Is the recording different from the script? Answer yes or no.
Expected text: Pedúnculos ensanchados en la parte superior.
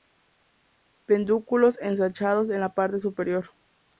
no